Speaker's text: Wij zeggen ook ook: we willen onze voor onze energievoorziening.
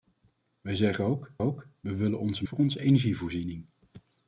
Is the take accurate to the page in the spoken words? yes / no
yes